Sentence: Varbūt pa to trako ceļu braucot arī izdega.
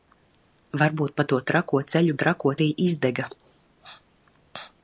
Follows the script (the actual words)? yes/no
no